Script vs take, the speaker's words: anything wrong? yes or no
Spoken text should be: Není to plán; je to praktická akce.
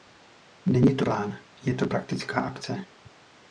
no